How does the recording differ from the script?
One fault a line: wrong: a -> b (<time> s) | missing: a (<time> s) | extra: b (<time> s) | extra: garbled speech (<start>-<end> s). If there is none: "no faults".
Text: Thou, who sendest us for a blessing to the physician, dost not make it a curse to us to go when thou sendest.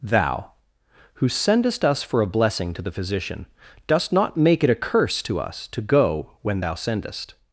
no faults